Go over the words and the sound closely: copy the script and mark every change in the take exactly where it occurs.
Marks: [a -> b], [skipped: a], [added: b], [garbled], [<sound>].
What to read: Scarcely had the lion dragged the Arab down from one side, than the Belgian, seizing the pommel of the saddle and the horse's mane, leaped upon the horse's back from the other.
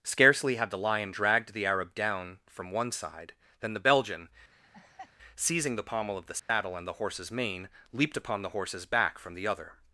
Scarcely had the lion dragged the Arab down from one side, than the Belgian, [laugh] seizing the pommel of the saddle [dropout] and the horse's mane, leaped upon the horse's back from the other.